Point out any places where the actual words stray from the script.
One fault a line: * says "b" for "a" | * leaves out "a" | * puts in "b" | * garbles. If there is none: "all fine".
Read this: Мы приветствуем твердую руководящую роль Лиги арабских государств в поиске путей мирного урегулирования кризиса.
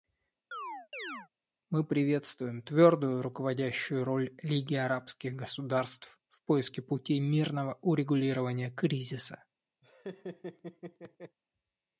all fine